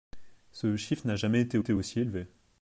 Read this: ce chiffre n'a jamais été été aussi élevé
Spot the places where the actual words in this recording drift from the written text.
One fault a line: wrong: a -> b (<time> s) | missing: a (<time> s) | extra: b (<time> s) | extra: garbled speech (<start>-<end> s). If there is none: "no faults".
no faults